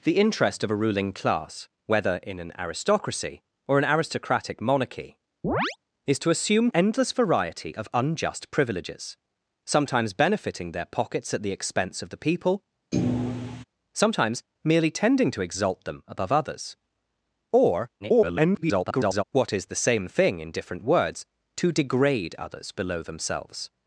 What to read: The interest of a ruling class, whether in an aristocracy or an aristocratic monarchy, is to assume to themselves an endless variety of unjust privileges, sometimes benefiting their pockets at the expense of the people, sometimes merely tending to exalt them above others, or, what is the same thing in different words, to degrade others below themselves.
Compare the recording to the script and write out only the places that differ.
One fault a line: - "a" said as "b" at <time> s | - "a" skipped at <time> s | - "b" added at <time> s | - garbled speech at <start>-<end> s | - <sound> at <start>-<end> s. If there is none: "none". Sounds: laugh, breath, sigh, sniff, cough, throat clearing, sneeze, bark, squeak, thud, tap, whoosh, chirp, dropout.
- chirp at 5.4-5.8 s
- "to themselves an" skipped at 6.7 s
- thud at 12.9-13.6 s
- garbled speech at 18.0-19.2 s